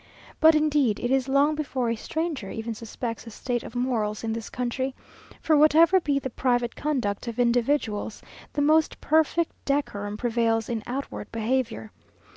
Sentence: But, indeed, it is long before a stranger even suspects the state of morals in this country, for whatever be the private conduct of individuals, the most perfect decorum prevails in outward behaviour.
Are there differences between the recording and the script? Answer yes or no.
no